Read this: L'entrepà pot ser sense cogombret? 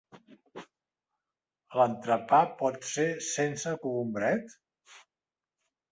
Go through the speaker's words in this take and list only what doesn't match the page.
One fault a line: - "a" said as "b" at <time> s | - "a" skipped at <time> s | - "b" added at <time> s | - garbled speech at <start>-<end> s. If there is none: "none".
none